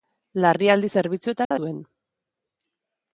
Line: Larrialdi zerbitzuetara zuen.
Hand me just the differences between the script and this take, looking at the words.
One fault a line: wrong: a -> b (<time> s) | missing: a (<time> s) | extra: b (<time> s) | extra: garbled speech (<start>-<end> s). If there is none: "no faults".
no faults